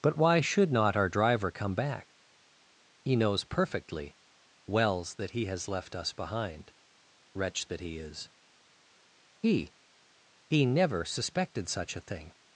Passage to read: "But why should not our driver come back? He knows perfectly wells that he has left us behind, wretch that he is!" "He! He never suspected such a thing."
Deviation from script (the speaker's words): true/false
false